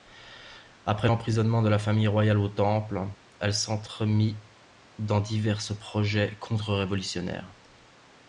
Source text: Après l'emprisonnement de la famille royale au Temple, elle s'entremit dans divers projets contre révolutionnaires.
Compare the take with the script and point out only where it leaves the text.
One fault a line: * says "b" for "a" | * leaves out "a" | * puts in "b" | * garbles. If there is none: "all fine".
all fine